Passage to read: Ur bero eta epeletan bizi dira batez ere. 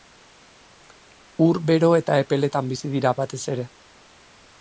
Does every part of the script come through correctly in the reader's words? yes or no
yes